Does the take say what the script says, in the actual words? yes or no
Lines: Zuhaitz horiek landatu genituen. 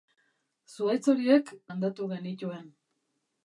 yes